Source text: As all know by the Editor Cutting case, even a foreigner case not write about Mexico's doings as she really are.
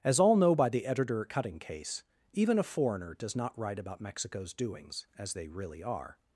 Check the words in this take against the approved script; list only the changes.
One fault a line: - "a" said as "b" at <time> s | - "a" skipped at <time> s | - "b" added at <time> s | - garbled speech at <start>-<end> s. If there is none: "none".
- "case" said as "does" at 3.1 s
- "she" said as "they" at 5.3 s